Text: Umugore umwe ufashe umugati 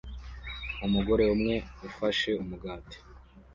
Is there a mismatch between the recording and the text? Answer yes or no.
no